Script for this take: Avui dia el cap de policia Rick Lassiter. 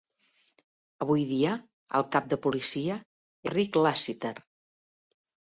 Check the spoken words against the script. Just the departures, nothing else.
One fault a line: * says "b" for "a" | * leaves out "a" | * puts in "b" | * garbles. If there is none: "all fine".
all fine